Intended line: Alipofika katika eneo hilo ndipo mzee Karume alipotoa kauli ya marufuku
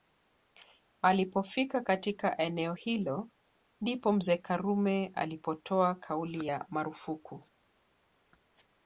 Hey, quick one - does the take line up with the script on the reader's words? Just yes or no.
yes